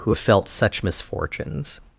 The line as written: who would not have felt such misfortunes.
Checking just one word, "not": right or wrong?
wrong